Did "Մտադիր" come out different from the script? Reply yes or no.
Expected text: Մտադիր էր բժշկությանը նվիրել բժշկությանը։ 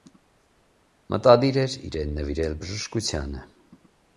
no